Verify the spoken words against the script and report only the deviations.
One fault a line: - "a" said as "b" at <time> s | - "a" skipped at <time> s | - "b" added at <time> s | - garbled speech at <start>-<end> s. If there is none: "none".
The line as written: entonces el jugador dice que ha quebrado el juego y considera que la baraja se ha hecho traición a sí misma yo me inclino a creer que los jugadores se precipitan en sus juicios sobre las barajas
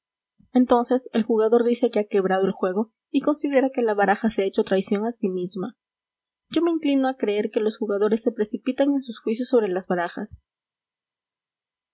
none